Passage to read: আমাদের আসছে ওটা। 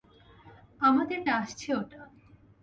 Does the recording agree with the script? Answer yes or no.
yes